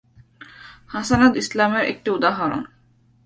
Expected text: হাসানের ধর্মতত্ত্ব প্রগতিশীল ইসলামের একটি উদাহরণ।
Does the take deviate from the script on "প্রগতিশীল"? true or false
true